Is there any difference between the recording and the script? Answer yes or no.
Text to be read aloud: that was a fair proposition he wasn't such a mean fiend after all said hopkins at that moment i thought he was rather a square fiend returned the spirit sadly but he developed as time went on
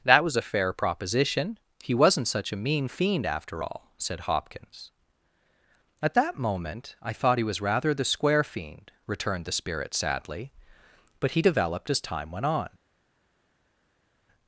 yes